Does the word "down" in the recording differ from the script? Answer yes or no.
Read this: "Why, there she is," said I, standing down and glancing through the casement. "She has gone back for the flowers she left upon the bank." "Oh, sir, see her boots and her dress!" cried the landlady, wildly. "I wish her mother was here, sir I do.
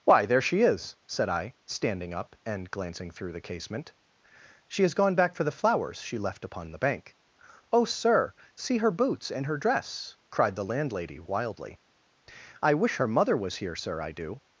yes